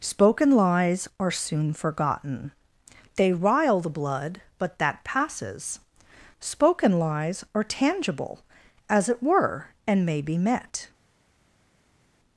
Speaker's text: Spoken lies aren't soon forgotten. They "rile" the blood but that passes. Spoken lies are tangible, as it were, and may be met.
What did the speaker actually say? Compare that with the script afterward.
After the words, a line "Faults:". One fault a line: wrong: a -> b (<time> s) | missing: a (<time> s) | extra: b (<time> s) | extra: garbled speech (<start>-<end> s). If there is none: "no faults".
Spoken lies are soon forgotten. They "rile" the blood but that passes. Spoken lies are tangible, as it were, and may be met.
Faults:
wrong: aren't -> are (1.2 s)